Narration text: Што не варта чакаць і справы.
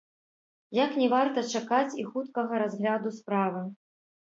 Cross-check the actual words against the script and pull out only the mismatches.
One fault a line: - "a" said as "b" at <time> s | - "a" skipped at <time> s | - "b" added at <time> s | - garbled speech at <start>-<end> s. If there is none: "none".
- "Што" said as "Як" at 0.8 s
- "хуткага разгляду" added at 2.1 s